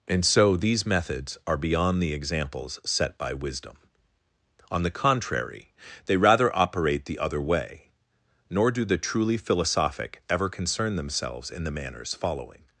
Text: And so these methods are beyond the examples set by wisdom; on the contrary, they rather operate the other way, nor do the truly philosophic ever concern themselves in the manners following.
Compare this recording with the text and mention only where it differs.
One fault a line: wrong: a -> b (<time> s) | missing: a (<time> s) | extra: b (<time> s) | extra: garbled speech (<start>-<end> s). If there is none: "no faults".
no faults